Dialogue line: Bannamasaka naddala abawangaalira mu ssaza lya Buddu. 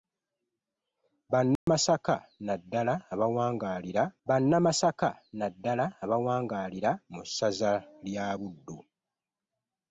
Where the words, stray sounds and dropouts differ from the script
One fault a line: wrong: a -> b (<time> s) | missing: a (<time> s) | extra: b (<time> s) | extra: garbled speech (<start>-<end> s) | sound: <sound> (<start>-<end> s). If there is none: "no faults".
sound: dropout (1.6-1.7 s)
extra: bannamasaka naddala abawangaalira (4.3 s)